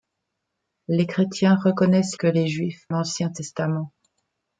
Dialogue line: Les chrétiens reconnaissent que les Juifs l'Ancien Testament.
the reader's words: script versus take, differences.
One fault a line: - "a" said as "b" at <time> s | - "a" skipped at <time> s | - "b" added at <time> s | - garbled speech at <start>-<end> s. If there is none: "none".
none